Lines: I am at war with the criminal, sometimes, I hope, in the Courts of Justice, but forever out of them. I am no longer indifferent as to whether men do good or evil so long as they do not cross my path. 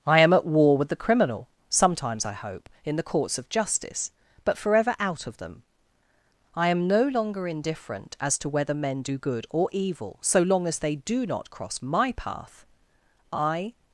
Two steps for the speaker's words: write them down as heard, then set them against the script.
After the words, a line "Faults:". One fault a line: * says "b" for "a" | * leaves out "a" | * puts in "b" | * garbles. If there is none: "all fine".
I am at war with the criminal, sometimes, I hope, in the Courts of Justice, but forever out of them. I am no longer indifferent as to whether men do good or evil so long as they do not cross my path. I
Faults:
* puts in "I"